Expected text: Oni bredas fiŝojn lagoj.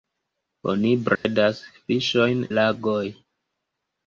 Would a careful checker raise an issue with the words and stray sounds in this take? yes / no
yes